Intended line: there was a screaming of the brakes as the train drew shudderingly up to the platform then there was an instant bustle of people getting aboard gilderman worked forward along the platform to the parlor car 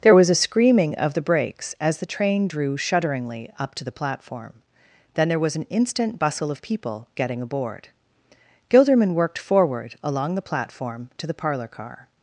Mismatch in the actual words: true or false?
false